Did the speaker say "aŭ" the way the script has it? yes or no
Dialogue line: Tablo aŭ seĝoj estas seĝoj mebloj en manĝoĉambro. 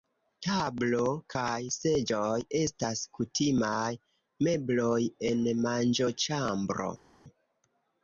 no